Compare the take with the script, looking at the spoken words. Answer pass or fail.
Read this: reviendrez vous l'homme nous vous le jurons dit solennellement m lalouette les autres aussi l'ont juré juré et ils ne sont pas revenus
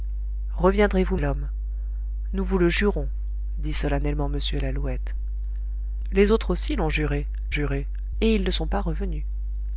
pass